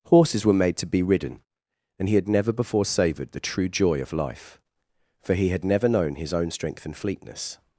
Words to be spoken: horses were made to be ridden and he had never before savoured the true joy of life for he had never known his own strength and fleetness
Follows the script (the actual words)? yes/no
yes